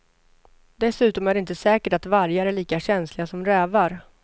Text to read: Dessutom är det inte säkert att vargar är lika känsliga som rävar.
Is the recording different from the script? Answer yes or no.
no